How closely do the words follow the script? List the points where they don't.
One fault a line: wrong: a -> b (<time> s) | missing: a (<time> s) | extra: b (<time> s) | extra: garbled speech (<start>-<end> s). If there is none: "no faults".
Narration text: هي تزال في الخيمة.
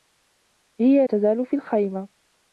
no faults